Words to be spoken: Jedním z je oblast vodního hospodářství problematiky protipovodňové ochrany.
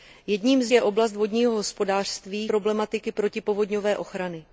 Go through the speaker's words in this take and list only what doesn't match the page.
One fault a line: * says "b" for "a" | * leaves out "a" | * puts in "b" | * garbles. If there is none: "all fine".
all fine